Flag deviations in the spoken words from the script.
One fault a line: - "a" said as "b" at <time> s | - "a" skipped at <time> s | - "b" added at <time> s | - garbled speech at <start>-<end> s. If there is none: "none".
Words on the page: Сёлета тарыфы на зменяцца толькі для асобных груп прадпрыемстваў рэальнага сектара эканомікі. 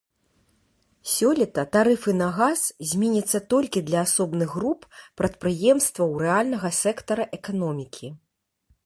- "газ" added at 2.4 s